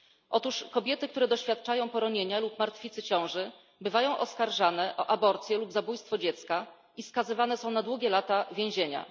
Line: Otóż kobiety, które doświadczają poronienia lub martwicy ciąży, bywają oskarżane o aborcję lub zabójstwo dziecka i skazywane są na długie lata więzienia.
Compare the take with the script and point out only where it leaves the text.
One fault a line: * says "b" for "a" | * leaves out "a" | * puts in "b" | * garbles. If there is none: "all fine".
all fine